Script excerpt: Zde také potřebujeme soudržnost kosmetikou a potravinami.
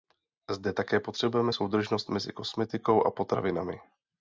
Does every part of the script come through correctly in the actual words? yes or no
no